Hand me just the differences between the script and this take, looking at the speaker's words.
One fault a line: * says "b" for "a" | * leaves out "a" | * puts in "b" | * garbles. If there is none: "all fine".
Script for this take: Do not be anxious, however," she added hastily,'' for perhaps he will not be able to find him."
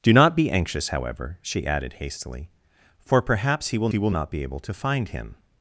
* puts in "he will"